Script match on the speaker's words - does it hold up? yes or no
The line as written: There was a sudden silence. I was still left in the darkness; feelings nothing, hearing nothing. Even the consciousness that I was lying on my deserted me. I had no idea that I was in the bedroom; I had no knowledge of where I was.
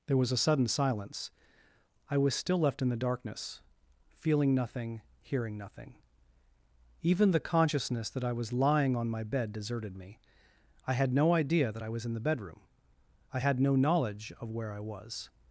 no